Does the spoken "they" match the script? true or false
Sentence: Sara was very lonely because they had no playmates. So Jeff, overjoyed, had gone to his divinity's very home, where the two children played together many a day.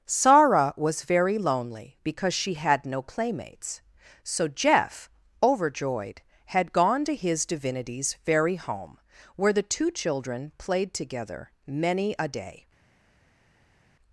false